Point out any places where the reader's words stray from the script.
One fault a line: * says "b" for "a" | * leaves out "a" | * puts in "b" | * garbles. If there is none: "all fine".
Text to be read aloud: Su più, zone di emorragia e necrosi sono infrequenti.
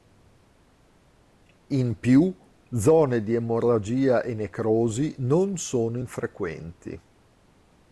* says "In" for "Su"
* puts in "non"